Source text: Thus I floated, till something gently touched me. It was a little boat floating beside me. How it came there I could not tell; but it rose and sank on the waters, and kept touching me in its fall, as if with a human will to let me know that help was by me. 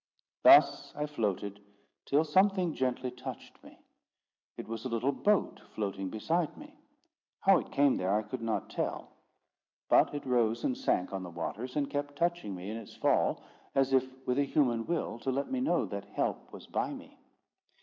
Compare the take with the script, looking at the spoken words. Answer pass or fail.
pass